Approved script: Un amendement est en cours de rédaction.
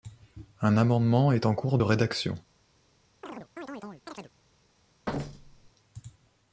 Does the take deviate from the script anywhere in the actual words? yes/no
no